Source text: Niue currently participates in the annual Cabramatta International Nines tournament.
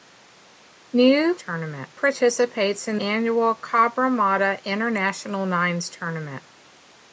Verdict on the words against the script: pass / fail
fail